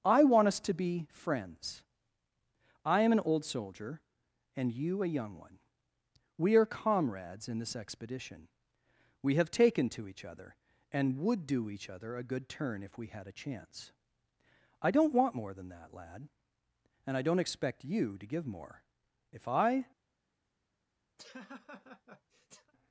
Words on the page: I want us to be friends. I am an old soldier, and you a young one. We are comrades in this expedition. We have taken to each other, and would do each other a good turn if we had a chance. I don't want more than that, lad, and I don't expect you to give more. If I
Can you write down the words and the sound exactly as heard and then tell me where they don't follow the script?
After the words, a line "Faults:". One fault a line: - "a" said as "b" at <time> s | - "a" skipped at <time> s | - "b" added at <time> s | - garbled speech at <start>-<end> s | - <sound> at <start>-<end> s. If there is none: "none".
I want us to be friends. I am an old soldier, and you a young one. We are comrades in this expedition. We have taken to each other, and would do each other a good turn if we had a chance. I don't want more than that, lad, and I don't expect you to give more. If I
Faults:
- laugh at 21.2-22.7 s